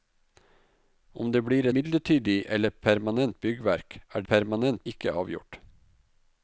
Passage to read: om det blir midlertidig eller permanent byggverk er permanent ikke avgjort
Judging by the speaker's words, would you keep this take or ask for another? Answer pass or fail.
pass